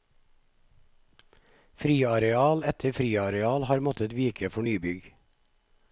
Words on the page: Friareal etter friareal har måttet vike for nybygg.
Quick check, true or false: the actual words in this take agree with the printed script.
true